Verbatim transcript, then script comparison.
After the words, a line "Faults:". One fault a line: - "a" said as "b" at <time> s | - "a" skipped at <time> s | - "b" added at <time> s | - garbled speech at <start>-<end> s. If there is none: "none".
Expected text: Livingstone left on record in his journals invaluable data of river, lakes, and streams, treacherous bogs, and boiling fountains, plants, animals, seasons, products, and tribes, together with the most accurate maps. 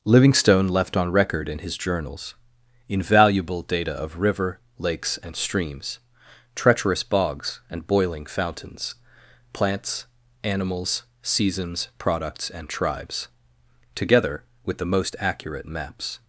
Livingstone left on record in his journals invaluable data of river, lakes, and streams, treacherous bogs, and boiling fountains, plants, animals, seasons, products, and tribes, together with the most accurate maps.
Faults:
none